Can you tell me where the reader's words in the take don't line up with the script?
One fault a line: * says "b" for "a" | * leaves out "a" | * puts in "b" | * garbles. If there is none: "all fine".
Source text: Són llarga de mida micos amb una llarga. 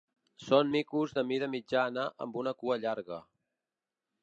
* says "micos" for "llarga"
* says "mitjana" for "micos"
* puts in "cua"